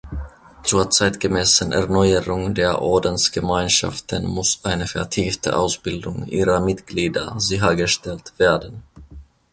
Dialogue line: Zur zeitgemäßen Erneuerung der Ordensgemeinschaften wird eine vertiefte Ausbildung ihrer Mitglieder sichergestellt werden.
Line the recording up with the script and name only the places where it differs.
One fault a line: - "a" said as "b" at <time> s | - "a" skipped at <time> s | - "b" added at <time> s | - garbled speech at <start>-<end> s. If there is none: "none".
- "wird" said as "muss" at 4.2 s